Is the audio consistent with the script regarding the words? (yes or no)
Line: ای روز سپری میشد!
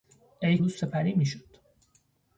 yes